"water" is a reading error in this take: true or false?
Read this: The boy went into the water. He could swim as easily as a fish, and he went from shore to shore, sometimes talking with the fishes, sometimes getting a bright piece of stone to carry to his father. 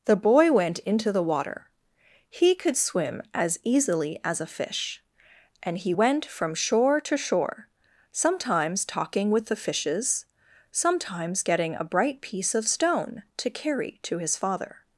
false